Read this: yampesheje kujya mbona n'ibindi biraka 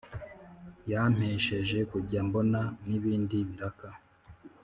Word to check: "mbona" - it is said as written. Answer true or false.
true